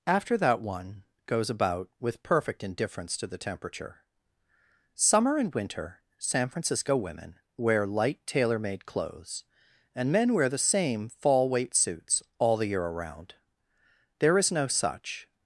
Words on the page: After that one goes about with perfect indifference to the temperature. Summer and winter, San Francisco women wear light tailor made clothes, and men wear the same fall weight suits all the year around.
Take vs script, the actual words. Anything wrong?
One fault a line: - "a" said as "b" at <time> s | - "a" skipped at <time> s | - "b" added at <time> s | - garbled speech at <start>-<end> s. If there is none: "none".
- "There is no such" added at 14.2 s